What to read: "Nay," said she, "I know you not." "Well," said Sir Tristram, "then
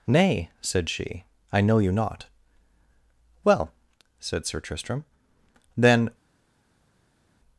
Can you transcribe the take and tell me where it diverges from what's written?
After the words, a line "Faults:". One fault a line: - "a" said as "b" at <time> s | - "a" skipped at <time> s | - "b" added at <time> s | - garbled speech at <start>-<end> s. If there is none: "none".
"Nay," said she, "I know you not." "Well," said Sir Tristram, "then
Faults:
none